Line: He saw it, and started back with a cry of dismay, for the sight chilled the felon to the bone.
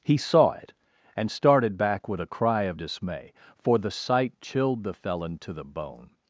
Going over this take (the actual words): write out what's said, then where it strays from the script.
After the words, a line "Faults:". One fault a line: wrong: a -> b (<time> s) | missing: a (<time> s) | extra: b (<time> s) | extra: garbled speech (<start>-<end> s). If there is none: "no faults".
He saw it, and started back with a cry of dismay, for the sight chilled the felon to the bone.
Faults:
no faults